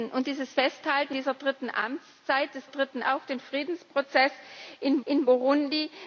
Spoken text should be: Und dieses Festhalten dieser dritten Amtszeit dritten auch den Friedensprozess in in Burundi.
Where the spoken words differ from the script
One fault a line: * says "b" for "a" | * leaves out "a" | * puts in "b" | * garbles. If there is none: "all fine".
all fine